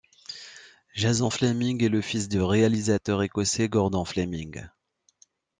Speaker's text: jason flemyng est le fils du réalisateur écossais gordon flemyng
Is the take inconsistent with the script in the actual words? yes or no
no